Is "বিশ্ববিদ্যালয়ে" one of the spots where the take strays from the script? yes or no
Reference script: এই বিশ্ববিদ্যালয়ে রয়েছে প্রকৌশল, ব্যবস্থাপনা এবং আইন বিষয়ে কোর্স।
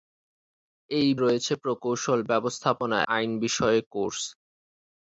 yes